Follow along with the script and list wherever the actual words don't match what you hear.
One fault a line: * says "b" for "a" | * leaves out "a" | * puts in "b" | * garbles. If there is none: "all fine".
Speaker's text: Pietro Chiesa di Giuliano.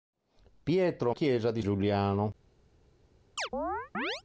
all fine